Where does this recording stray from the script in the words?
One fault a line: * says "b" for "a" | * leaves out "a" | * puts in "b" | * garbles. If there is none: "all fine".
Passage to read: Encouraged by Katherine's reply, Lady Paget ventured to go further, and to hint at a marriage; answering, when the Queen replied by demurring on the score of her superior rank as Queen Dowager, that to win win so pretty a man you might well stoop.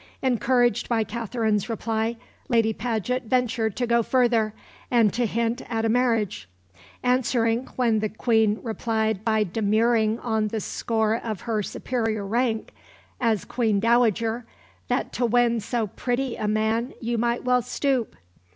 * leaves out "win"